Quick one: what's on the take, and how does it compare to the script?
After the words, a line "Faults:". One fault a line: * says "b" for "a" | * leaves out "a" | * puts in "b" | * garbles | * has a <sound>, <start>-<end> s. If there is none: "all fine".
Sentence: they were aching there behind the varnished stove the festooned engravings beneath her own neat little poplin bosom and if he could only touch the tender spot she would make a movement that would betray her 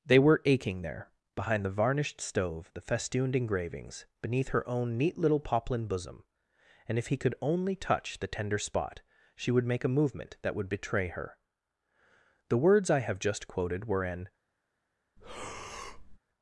they were aching there behind the varnished stove the festooned engravings beneath her own neat little poplin bosom and if he could only touch the tender spot she would make a movement that would betray her the words i have just quoted were an
Faults:
* puts in "the words i have just quoted were an"
* has a breath, 15.2-16.2 s